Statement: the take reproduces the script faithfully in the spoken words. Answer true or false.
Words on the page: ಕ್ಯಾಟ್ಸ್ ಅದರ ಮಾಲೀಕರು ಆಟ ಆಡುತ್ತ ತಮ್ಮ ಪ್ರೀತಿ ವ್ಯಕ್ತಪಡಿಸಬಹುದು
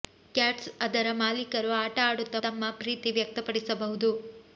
true